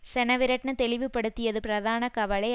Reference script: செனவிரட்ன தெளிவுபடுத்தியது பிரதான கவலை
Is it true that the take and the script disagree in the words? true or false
false